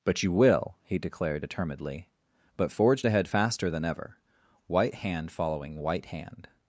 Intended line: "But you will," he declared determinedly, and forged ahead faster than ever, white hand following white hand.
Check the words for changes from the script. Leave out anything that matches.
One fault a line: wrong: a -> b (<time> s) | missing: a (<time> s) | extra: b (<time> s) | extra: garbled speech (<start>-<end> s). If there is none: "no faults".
wrong: and -> but (2.6 s)